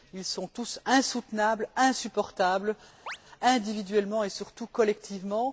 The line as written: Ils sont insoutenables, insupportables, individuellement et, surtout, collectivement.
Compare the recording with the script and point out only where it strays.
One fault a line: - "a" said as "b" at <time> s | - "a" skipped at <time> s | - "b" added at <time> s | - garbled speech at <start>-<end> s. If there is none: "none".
- "tous" added at 0.5 s